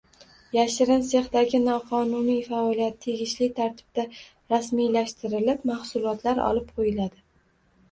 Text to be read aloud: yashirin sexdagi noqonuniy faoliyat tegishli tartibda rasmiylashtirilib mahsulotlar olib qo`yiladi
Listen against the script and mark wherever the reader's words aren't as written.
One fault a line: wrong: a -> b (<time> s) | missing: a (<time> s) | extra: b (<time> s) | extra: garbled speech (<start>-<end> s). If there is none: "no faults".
no faults